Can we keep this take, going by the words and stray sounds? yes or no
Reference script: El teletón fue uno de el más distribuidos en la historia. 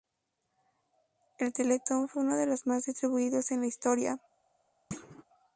no